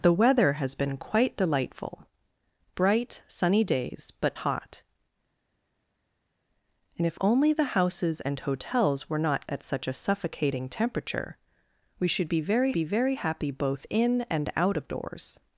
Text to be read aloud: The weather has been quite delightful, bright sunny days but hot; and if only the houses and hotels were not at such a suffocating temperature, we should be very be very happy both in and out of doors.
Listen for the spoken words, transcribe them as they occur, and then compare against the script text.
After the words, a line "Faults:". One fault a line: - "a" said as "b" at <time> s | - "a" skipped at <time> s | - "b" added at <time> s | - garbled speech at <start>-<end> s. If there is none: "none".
The weather has been quite delightful, bright sunny days but hot; and if only the houses and hotels were not at such a suffocating temperature, we should be very be very happy both in and out of doors.
Faults:
none